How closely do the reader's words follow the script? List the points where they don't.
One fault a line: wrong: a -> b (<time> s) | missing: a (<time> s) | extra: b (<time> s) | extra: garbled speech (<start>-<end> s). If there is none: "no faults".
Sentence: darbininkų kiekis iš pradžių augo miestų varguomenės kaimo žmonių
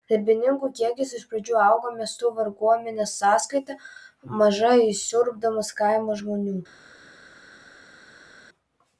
extra: sąskaita maža įsiurbdamas (3.2 s)